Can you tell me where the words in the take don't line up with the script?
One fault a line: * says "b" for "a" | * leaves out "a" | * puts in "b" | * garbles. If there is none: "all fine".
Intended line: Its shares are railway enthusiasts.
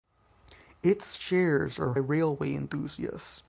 all fine